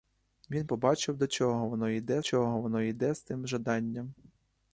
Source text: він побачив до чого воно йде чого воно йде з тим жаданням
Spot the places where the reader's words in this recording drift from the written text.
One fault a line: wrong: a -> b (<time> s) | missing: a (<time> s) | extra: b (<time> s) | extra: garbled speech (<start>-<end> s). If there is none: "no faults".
no faults